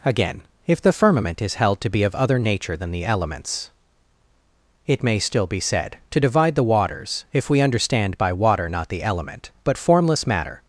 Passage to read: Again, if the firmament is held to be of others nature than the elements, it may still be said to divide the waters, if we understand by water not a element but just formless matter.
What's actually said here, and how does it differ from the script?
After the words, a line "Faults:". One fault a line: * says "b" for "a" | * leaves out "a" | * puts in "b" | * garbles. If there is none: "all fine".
Again, if the firmament is held to be of other nature than the elements, it may still be said to divide the waters, if we understand by water not the element but formless matter.
Faults:
* says "other" for "others"
* says "the" for "a"
* leaves out "just"